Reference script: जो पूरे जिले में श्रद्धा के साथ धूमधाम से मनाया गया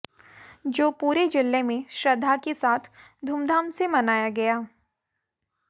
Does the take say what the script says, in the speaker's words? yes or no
yes